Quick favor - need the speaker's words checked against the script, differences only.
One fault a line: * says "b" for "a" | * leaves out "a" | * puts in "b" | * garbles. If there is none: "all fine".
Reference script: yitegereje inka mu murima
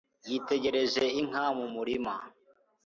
all fine